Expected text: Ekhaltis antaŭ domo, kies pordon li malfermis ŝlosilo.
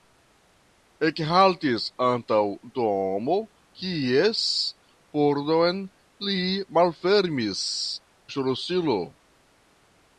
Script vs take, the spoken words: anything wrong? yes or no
no